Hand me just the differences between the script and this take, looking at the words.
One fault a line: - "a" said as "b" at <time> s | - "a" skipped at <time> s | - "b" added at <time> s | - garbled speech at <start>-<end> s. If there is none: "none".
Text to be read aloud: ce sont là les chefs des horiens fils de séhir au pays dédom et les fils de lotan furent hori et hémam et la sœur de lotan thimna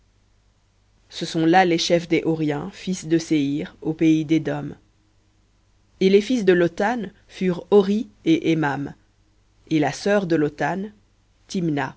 none